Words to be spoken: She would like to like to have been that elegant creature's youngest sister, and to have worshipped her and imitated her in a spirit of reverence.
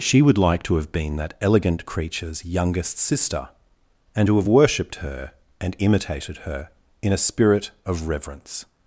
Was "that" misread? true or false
false